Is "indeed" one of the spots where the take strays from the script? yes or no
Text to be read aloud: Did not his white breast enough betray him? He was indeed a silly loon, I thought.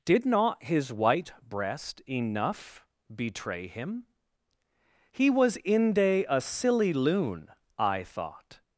yes